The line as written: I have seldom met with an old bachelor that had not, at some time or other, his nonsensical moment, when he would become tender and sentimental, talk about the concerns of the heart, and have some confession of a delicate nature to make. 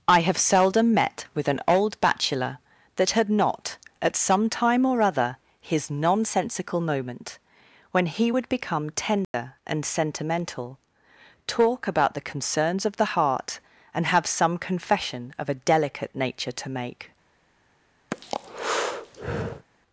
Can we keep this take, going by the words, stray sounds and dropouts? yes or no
no